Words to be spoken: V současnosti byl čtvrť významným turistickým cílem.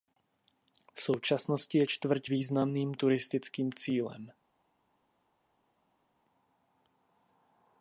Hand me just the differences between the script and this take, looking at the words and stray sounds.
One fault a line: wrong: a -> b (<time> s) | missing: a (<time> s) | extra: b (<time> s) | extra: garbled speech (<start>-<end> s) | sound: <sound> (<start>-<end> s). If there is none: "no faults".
wrong: byl -> je (1.8 s)